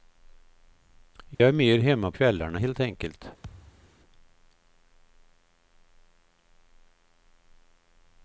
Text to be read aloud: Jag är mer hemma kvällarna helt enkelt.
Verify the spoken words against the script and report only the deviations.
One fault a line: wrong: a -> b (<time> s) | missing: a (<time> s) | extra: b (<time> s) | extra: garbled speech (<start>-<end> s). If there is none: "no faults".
no faults